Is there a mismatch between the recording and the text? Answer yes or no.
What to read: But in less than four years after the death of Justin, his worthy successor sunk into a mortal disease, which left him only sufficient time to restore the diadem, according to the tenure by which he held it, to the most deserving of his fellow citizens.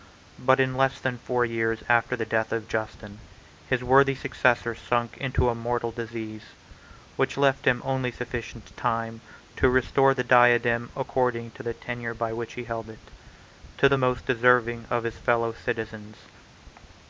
no